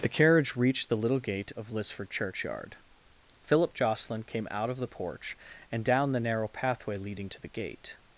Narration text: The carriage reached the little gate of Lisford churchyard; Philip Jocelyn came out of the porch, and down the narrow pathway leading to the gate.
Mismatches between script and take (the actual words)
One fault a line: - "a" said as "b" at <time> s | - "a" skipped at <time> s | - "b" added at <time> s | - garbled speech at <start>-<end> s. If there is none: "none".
none